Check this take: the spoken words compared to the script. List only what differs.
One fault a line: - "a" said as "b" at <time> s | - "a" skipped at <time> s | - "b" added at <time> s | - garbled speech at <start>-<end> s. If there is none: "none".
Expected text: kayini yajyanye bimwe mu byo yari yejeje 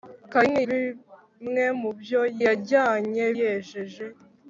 - "yajyanye" skipped at 0.6 s
- "yari" said as "yajyanye" at 2.5 s